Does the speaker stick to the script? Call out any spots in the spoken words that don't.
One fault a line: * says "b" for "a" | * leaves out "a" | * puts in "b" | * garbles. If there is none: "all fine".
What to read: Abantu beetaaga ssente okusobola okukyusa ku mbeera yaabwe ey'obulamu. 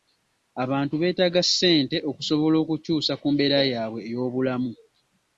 all fine